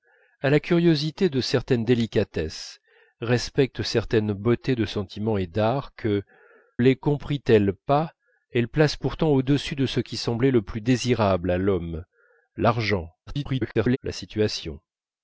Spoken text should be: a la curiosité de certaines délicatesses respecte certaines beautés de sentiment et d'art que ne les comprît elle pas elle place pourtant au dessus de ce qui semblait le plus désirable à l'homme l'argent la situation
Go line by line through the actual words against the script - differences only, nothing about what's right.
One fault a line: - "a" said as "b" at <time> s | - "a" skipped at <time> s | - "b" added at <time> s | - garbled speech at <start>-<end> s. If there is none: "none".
- "ne" skipped at 6.2 s
- garbled speech at 13.3-14.0 s